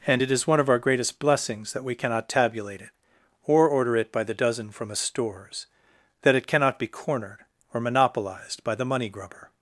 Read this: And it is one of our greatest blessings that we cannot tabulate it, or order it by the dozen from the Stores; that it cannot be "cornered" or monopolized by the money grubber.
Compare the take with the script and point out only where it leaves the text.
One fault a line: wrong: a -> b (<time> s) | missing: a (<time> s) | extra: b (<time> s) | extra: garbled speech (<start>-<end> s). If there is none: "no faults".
wrong: the -> a (4.9 s)